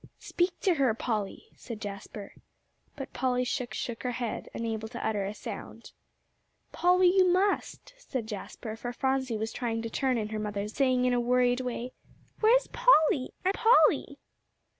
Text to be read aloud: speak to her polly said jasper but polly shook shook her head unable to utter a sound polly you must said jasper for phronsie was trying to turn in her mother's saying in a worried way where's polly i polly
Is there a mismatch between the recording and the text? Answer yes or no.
no